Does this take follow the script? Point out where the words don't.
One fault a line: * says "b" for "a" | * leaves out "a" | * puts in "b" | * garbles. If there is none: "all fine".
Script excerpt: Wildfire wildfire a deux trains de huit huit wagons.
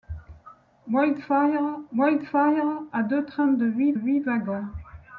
all fine